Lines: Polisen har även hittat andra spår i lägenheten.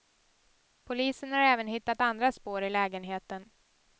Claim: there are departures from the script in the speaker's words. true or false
false